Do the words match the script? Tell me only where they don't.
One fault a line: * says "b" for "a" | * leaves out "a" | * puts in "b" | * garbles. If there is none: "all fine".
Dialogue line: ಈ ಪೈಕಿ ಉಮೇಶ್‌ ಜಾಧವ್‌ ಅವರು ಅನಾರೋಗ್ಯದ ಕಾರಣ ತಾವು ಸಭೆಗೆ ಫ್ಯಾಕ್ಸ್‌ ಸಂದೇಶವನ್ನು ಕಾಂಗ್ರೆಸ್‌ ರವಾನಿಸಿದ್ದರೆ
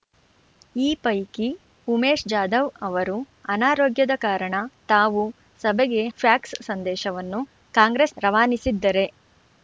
all fine